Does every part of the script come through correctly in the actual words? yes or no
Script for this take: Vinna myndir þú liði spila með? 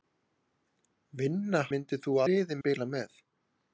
yes